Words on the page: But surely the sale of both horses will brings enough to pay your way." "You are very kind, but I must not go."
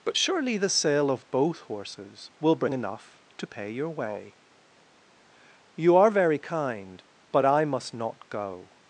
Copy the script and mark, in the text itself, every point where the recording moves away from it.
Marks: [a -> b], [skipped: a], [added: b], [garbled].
But surely the sale of both horses will [brings -> bring] enough to pay your way." "You are very kind, but I must not go."